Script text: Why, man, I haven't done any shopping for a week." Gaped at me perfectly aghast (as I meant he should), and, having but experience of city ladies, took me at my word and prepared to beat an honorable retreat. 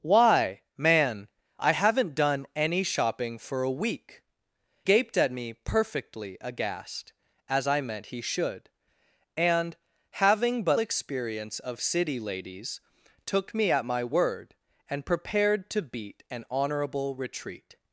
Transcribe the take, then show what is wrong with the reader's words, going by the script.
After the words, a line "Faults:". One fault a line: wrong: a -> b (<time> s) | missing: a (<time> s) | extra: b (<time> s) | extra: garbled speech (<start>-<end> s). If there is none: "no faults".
Why, man, I haven't done any shopping for a week." Gaped at me perfectly aghast (as I meant he should), and, having but experience of city ladies, took me at my word and prepared to beat an honorable retreat.
Faults:
no faults